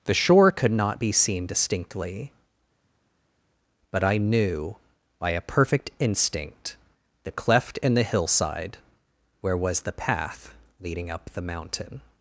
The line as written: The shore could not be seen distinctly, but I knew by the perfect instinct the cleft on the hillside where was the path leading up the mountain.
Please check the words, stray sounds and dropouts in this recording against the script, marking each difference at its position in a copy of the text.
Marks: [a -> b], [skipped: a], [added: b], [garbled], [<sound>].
The shore could not be seen distinctly, but I knew by [the -> a] perfect instinct the cleft [on -> in] the hillside where was the path leading up the mountain.